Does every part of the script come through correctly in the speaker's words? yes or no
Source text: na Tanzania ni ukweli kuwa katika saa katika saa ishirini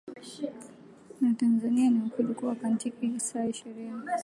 no